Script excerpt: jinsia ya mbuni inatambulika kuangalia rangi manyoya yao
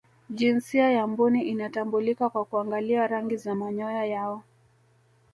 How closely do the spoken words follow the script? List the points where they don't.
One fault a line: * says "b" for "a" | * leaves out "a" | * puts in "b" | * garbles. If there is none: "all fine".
* puts in "kwa"
* puts in "za"